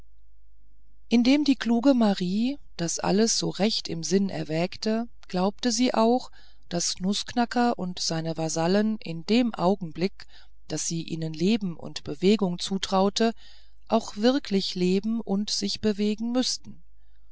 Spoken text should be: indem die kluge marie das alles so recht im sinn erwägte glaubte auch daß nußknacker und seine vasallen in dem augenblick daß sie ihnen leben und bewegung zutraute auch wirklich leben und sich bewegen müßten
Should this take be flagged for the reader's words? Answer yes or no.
yes